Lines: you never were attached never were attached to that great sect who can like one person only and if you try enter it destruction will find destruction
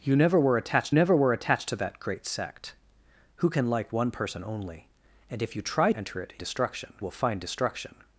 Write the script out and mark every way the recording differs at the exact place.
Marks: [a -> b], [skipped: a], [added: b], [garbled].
you never were attached never were attached to that great sect who can like one person only and if you try enter it destruction will find destruction